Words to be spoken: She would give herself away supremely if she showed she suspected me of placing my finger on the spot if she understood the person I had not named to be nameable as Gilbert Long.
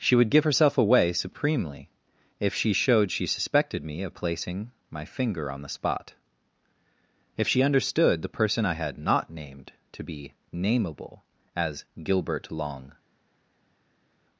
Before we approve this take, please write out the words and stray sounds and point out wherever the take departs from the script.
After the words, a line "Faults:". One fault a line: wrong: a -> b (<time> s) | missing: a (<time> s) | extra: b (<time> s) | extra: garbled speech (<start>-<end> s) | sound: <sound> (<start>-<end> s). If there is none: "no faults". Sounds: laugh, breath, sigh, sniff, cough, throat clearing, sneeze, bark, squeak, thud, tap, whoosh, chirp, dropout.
She would give herself away supremely if she showed she suspected me of placing my finger on the spot if she understood the person I had not named to be nameable as Gilbert Long.
Faults:
no faults